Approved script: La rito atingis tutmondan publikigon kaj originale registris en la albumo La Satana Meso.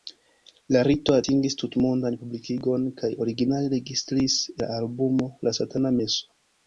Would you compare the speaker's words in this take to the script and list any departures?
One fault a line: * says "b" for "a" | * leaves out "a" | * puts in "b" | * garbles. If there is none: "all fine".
* leaves out "en"